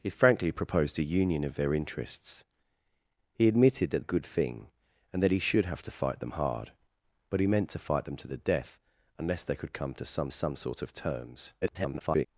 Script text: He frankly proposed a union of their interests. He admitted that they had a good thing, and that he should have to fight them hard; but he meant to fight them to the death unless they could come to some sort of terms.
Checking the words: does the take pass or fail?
fail